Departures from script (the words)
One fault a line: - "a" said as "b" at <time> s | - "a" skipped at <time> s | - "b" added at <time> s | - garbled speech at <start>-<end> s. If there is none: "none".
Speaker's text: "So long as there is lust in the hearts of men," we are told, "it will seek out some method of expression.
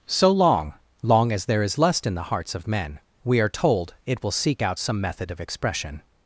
- "long" added at 1.0 s